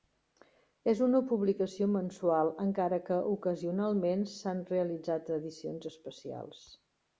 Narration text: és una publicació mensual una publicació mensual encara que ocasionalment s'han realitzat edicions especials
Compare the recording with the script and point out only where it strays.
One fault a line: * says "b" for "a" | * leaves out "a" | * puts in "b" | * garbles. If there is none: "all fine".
* leaves out "una publicació mensual"